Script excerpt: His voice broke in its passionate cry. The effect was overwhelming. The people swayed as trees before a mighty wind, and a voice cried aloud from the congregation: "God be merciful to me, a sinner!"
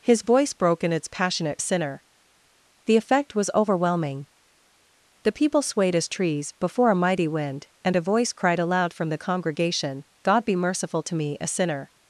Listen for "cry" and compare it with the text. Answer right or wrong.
wrong